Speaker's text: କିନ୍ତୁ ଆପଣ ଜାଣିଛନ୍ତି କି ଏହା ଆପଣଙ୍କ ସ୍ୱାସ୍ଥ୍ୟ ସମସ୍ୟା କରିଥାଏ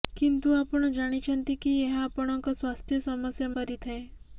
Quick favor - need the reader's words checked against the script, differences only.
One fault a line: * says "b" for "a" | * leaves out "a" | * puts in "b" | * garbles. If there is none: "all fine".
all fine